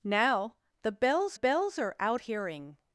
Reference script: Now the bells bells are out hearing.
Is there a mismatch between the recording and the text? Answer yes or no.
no